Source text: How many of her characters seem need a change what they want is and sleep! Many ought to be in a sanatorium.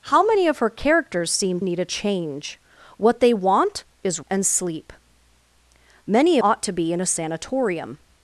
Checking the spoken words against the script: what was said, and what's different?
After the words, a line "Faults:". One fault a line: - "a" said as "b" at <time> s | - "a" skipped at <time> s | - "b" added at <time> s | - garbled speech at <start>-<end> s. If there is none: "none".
How many of her characters seem need a change what they want is and sleep! Many ought to be in a sanatorium.
Faults:
none